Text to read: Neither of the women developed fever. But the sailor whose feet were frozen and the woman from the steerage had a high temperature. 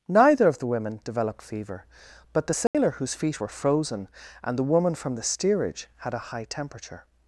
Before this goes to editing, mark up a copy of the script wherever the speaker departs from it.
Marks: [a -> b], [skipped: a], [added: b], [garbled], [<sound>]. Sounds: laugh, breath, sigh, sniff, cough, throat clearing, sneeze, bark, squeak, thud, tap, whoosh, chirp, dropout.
Neither of the women developed fever. But the sailor [dropout] whose feet were frozen and the woman from the steerage had a high temperature.